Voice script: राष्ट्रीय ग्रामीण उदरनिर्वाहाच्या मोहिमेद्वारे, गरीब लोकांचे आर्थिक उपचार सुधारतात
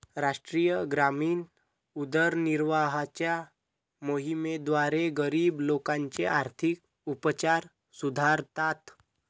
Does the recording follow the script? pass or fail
pass